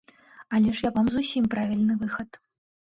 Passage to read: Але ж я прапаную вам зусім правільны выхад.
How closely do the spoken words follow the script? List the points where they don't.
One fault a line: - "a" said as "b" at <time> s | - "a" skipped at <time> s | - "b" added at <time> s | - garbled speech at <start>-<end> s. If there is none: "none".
- "прапаную" skipped at 0.9 s